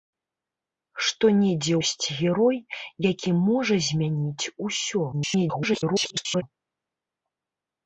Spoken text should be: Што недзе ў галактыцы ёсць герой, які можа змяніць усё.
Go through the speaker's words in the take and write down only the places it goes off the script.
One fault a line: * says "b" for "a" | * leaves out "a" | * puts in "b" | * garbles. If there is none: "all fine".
* leaves out "ў галактыцы"
* garbles